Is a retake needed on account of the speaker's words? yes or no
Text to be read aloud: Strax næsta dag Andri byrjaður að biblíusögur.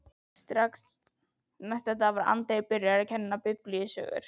yes